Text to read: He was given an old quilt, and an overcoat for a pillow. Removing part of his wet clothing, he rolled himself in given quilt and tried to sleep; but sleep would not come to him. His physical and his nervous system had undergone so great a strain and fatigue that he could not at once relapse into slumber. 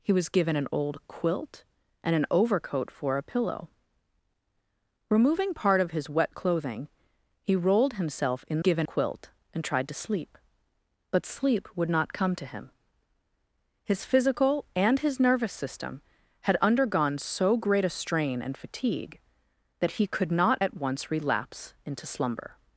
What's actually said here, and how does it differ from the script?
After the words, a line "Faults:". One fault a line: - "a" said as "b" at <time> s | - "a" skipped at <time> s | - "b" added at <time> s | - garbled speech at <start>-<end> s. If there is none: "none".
He was given an old quilt, and an overcoat for a pillow. Removing part of his wet clothing, he rolled himself in given quilt and tried to sleep; but sleep would not come to him. His physical and his nervous system had undergone so great a strain and fatigue that he could not at once relapse into slumber.
Faults:
none